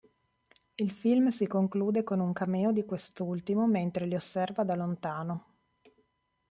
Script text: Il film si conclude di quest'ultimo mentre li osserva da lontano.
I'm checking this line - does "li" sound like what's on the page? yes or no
yes